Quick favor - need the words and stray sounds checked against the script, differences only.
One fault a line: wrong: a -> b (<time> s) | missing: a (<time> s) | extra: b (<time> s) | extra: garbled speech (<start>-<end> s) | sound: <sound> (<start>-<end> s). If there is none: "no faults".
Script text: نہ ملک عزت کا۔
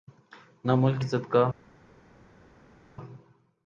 no faults